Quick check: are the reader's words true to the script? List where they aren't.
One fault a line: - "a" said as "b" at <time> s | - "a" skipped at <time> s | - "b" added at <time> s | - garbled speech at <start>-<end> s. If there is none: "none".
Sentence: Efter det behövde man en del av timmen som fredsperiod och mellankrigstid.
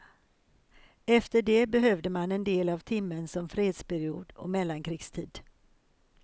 none